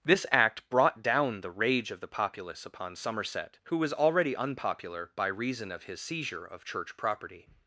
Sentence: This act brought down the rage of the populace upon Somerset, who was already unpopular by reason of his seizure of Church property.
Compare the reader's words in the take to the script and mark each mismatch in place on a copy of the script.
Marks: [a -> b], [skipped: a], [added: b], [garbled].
This act brought down the rage of the populace upon Somerset, who was already unpopular by reason of his seizure of Church property.